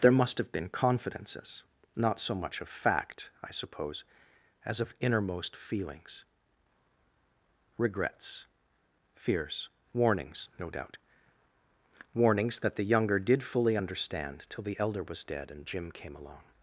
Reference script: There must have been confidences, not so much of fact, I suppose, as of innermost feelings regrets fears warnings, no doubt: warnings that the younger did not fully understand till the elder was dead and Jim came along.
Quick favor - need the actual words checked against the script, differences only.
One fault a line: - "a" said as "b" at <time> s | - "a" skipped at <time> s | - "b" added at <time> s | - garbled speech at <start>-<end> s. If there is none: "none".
- "not" skipped at 13.4 s